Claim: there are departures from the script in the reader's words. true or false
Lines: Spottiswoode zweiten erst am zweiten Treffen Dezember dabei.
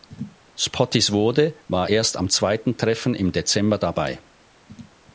true